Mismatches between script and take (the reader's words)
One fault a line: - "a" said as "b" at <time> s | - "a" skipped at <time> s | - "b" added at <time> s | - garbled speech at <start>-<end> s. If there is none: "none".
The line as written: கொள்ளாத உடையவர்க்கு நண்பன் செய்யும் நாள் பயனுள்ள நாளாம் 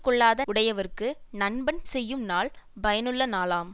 none